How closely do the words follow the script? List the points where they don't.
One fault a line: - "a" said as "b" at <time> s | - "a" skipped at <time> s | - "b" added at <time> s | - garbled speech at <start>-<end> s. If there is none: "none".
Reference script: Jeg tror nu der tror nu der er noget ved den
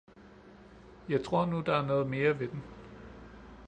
- "tror nu der" skipped at 1.7 s
- "mere" added at 2.1 s